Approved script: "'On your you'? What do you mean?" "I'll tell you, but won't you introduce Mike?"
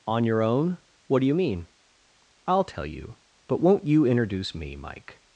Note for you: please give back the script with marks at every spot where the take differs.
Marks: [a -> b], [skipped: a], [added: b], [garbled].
"'On your [you'? -> own] What do you mean?" "I'll tell you, but won't you introduce [added: me] Mike?"